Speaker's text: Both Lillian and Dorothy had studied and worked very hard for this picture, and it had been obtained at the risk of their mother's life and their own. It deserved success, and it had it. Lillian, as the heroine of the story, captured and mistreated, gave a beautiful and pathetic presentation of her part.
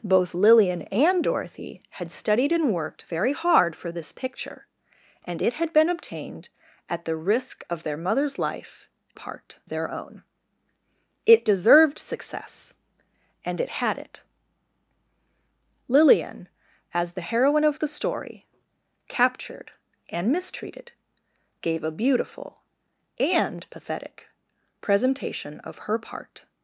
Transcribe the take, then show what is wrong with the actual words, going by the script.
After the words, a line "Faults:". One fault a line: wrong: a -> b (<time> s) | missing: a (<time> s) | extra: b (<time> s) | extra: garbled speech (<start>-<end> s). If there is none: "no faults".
Both Lillian and Dorothy had studied and worked very hard for this picture, and it had been obtained at the risk of their mother's life part their own. It deserved success, and it had it. Lillian, as the heroine of the story, captured and mistreated, gave a beautiful and pathetic presentation of her part.
Faults:
wrong: and -> part (9.1 s)